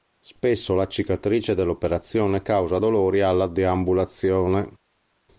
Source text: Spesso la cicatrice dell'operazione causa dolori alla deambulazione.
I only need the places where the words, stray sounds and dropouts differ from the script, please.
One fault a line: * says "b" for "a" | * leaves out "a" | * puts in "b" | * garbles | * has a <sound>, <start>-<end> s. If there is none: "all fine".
all fine